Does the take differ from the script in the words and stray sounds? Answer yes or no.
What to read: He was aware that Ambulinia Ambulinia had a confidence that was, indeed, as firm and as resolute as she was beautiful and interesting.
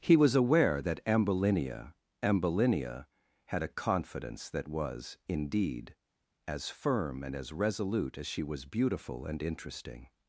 no